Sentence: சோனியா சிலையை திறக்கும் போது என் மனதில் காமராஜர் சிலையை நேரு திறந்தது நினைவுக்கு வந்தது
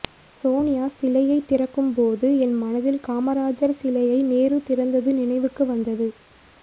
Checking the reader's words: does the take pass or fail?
pass